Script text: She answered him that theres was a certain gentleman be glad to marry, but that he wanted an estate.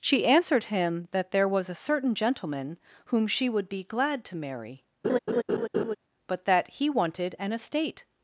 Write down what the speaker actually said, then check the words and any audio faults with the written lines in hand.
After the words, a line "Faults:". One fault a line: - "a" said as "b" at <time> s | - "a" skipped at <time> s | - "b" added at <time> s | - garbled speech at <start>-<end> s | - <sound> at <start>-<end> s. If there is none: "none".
She answered him that there was a certain gentleman whom she would be glad to marry, but that he wanted an estate.
Faults:
- "theres" said as "there" at 1.3 s
- "whom she would" added at 3.0 s
- laugh at 5.0-6.0 s